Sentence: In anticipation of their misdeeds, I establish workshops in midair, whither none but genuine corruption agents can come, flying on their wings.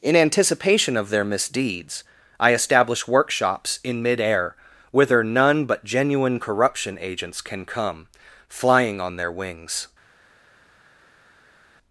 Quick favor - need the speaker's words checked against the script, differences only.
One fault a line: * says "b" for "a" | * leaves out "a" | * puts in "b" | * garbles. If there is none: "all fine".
all fine